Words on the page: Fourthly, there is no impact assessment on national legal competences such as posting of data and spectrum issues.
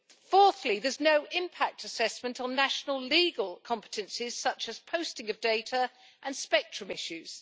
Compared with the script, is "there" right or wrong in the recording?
right